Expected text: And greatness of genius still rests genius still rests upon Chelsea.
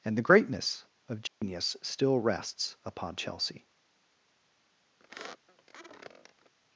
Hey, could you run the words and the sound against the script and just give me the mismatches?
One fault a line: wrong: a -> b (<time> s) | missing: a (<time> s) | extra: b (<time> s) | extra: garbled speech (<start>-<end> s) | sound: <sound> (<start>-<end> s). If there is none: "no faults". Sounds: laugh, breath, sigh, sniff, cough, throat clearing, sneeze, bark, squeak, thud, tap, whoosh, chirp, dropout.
extra: the (0.2 s)
sound: dropout (1.3-1.4 s)
missing: genius still rests (2.8 s)
sound: squeak (5.0-6.5 s)